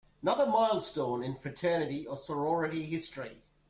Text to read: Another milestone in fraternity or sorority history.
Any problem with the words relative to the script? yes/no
no